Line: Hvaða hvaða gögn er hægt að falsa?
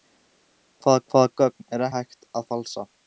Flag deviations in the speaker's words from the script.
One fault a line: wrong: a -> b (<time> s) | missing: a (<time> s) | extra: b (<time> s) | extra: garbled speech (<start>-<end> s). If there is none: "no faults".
no faults